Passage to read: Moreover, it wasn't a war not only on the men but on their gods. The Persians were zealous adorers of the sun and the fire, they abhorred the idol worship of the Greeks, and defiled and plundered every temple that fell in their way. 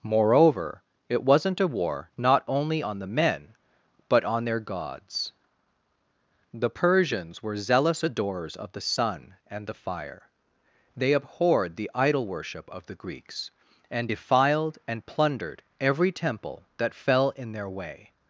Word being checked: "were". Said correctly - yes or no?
yes